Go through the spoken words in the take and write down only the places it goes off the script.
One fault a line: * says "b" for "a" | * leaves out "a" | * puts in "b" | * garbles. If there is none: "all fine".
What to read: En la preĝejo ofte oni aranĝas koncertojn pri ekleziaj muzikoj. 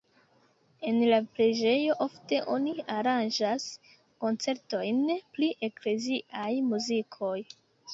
all fine